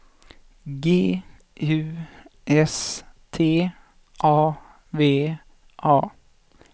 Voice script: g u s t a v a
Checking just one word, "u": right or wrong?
right